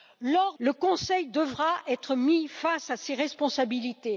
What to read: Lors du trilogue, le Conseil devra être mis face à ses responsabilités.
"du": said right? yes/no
no